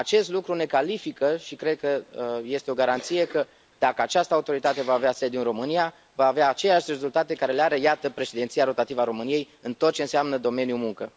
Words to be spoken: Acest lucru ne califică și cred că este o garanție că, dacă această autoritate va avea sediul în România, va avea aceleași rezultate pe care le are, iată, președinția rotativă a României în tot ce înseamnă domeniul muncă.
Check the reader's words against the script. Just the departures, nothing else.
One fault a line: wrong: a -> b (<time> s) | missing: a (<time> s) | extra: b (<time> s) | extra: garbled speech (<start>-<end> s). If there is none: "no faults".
no faults